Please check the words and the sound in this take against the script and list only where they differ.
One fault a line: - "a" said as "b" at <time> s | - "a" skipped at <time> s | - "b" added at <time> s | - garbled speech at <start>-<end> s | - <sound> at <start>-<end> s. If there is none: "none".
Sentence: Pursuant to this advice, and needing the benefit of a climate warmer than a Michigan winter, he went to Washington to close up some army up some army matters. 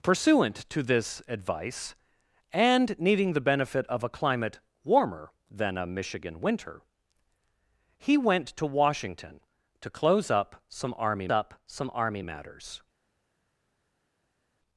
none